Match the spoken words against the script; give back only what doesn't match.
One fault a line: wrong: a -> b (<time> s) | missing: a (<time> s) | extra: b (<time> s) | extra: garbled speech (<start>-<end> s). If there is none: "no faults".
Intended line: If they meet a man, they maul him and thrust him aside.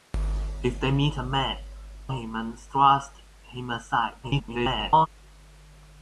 missing: they maul (1.6 s)
extra: garbled speech (4.2-5.1 s)